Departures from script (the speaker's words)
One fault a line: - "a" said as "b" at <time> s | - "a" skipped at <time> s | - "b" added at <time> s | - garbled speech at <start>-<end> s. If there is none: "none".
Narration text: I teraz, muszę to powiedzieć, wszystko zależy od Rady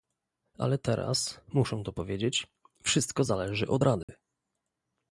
- "I" said as "Ale" at 0.6 s